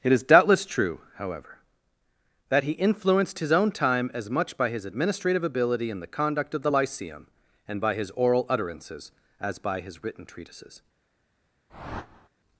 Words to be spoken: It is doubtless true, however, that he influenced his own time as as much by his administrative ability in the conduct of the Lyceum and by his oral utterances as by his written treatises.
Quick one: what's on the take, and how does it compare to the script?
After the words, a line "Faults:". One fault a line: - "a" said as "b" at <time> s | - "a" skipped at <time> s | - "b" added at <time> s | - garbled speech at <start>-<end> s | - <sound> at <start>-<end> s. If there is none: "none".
It is doubtless true, however, that he influenced his own time as much by his administrative ability in the conduct of the Lyceum and by his oral utterances as by his written treatises.
Faults:
- "as" skipped at 4.3 s
- whoosh at 11.7-12.3 s